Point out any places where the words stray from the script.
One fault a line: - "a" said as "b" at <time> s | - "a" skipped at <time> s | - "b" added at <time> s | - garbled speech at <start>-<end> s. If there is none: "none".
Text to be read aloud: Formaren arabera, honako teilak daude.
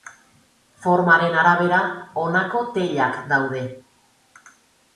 none